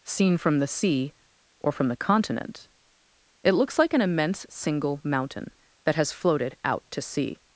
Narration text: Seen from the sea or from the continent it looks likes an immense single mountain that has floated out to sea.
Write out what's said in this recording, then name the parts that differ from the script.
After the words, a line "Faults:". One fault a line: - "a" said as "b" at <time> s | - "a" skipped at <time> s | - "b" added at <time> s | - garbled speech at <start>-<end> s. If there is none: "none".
Seen from the sea or from the continent it looks like an immense single mountain that has floated out to sea.
Faults:
- "likes" said as "like" at 3.8 s